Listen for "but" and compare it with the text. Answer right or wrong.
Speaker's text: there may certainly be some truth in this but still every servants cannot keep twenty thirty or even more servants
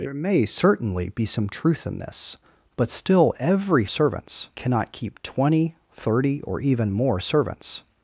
right